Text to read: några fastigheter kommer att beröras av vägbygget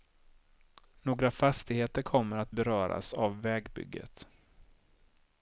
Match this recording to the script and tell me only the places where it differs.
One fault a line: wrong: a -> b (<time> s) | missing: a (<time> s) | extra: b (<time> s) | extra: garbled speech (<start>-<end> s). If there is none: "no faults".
no faults